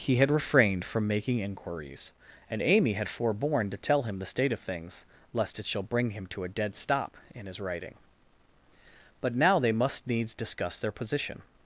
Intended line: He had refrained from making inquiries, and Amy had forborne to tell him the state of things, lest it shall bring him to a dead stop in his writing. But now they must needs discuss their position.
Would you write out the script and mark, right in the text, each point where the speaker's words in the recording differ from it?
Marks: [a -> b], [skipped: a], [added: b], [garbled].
He had refrained from making inquiries, and Amy had forborne to tell him the state of things, lest it shall bring him to a dead stop in his writing. But now they must needs discuss their position.